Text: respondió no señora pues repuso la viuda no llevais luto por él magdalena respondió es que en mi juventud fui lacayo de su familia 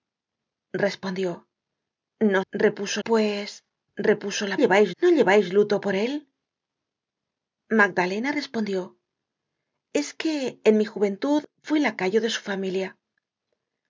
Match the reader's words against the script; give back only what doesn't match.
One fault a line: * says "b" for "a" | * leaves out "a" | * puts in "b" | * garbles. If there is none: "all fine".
* says "repuso" for "señora"
* says "llevais" for "viuda"